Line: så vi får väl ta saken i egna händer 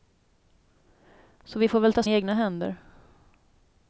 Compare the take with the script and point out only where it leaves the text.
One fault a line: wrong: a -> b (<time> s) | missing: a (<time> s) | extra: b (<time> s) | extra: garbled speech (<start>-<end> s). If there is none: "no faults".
missing: saken (2.0 s)